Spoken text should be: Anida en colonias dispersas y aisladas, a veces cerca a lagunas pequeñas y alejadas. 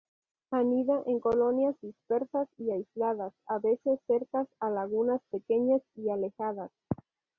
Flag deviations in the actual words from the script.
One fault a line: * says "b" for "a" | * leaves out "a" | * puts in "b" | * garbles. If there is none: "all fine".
all fine